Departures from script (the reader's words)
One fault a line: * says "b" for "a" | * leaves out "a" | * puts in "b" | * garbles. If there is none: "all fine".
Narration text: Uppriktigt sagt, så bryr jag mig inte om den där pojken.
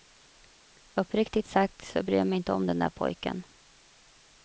all fine